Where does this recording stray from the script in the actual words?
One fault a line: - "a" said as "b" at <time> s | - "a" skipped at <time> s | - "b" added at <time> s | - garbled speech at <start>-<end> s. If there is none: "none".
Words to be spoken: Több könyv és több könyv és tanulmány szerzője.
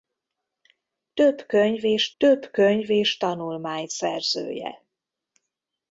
none